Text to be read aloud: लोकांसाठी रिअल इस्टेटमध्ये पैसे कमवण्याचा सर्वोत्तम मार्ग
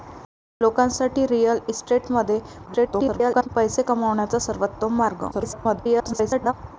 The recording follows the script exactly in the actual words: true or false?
false